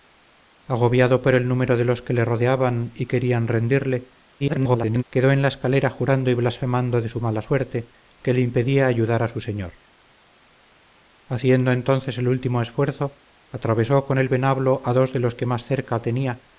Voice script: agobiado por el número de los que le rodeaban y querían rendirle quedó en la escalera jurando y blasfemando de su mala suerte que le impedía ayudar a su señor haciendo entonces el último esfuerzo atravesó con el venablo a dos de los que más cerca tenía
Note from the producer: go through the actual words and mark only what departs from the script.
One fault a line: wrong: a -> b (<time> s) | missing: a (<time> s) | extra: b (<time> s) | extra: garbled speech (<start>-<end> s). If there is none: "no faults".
extra: garbled speech (4.4-5.0 s)